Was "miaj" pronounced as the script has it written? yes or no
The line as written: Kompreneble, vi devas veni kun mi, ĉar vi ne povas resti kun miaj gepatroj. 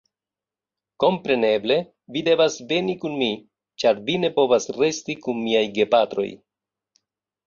yes